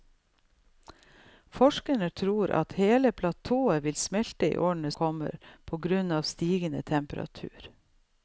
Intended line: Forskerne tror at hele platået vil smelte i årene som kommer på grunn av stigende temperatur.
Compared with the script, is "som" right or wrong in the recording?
wrong